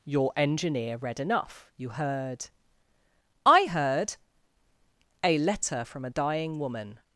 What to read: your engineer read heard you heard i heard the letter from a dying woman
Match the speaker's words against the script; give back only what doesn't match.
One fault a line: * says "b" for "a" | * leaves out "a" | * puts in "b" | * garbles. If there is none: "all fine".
* says "enough" for "heard"
* says "a" for "the"